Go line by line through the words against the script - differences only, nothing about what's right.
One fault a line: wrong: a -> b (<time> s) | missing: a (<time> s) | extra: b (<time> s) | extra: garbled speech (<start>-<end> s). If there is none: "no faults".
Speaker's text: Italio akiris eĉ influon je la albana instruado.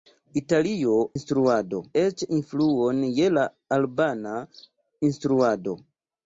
wrong: akiris -> instruado (1.2 s)